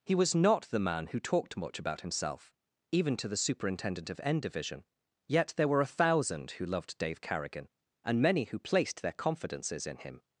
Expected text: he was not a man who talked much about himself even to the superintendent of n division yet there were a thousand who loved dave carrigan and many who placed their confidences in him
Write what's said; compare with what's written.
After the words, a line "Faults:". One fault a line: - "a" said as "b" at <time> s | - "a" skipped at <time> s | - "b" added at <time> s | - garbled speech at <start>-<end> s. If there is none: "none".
he was not the man who talked much about himself even to the superintendent of n division yet there were a thousand who loved dave carrigan and many who placed their confidences in him
Faults:
- "a" said as "the" at 0.6 s